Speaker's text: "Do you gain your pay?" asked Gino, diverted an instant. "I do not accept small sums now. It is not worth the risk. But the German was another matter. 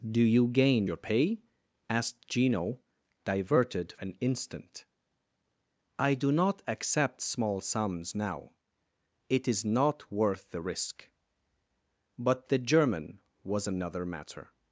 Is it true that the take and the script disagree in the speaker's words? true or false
false